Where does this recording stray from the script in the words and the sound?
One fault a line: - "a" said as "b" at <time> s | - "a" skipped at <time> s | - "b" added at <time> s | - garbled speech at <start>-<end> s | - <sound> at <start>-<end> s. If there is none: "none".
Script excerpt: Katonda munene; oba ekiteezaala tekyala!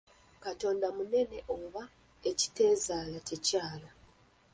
none